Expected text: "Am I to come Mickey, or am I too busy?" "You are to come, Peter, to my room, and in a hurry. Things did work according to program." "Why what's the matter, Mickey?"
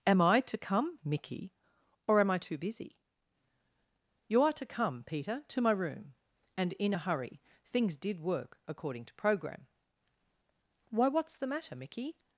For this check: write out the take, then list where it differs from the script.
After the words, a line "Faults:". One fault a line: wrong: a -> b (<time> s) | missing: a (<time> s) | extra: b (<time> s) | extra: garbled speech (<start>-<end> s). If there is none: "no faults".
"Am I to come Mickey, or am I too busy?" "You are to come, Peter, to my room, and in a hurry. Things did work according to program." "Why what's the matter, Mickey?"
Faults:
no faults